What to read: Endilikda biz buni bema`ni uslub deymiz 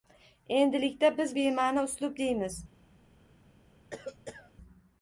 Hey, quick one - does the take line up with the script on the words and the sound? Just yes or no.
no